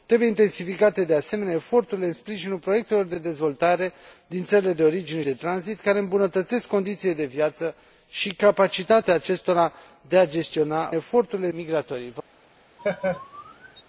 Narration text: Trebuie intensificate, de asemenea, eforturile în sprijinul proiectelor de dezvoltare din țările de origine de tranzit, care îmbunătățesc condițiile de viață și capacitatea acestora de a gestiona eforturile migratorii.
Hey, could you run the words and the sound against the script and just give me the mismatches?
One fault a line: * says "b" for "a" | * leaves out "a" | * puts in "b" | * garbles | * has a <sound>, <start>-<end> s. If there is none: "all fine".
* has a laugh, 12.8-13.8 s